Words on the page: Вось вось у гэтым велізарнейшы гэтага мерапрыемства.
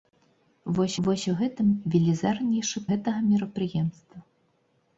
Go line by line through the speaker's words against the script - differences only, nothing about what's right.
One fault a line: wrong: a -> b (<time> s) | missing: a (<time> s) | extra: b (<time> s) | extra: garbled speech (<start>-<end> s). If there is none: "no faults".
no faults